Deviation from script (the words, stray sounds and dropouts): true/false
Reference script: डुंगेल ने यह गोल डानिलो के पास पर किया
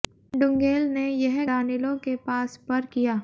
true